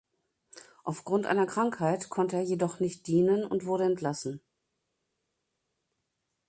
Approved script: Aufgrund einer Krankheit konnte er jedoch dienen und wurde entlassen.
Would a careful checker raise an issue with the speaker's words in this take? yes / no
yes